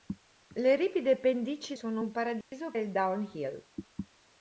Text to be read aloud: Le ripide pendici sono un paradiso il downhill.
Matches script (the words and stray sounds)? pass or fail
fail